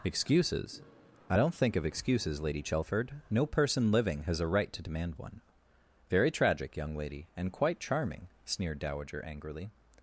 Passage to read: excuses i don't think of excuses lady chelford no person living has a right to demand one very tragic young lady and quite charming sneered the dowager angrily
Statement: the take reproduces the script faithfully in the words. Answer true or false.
false